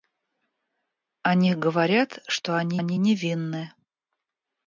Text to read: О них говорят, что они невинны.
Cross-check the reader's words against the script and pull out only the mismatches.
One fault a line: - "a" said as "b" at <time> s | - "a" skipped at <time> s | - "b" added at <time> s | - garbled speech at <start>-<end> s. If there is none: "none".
- "они" added at 2.8 s